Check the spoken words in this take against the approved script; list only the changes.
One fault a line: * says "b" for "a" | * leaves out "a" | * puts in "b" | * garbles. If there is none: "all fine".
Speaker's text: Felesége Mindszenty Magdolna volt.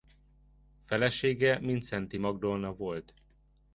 all fine